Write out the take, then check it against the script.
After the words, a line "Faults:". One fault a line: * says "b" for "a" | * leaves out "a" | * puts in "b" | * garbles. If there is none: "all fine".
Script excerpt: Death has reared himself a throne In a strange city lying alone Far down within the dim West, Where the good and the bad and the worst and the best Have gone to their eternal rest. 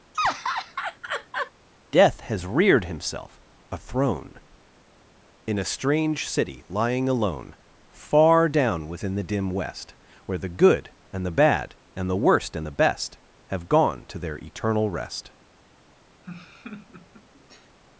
Death has reared himself a throne In a strange city lying alone Far down within the dim West, Where the good and the bad and the worst and the best Have gone to their eternal rest.
Faults:
all fine